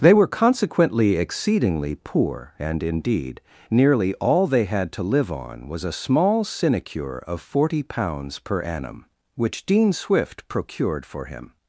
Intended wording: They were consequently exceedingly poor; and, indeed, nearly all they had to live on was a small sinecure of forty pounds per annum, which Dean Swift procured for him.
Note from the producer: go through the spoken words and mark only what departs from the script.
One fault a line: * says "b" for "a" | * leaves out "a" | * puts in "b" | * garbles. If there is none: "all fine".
all fine